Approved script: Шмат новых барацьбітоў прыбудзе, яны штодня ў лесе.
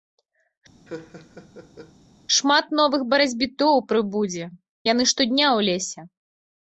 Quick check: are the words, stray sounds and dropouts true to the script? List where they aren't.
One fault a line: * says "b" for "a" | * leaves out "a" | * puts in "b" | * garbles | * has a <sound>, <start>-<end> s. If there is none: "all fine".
* has a laugh, 0.9-1.9 s